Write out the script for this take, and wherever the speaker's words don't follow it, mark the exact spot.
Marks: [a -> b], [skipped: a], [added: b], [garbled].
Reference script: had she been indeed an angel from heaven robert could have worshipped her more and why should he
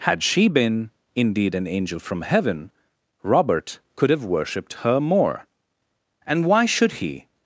had she been indeed an angel from heaven robert could have worshipped her more and why should he